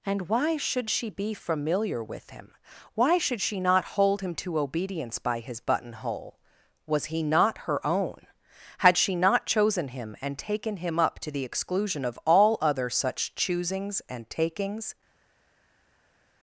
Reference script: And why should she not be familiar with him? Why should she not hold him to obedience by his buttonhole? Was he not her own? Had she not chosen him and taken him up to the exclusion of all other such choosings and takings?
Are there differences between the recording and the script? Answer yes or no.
yes